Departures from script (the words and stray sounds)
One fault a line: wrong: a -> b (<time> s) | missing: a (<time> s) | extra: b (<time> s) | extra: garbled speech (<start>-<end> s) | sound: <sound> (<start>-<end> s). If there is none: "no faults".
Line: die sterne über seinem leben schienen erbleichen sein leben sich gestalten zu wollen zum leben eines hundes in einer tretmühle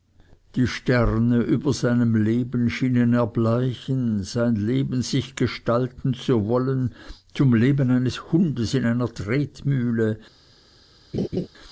sound: laugh (11.1-11.5 s)